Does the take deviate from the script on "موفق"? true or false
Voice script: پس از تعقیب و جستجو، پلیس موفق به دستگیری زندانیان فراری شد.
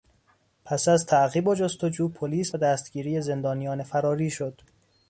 true